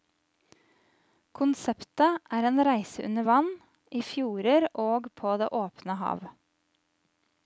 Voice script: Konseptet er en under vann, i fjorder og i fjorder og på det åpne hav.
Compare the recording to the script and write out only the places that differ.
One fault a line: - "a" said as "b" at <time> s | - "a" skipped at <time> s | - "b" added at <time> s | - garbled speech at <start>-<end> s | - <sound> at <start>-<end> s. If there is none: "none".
- "reise" added at 2.7 s
- "i fjorder og" skipped at 5.1 s